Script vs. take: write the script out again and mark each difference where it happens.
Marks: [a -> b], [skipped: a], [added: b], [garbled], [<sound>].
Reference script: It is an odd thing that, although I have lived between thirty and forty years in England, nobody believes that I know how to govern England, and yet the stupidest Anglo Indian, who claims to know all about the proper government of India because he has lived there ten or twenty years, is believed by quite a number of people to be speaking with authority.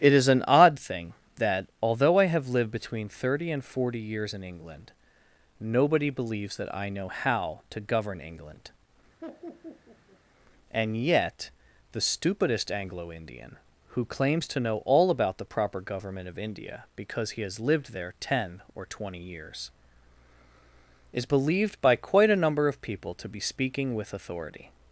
It is an odd thing that, although I have lived between thirty and forty years in England, nobody believes that I know how to govern England, [laugh] and yet the stupidest Anglo Indian, who claims to know all about the proper government of India because he has lived there ten or twenty years, is believed by quite a number of people to be speaking with authority.